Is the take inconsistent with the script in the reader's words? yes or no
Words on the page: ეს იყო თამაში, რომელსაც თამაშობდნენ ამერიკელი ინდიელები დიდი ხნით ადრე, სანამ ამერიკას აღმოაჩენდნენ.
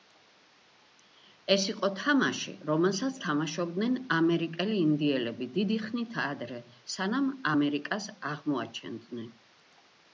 no